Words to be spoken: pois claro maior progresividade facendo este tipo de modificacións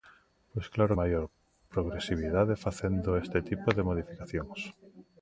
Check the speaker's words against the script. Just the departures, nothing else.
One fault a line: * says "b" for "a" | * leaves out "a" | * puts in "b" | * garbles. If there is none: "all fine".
all fine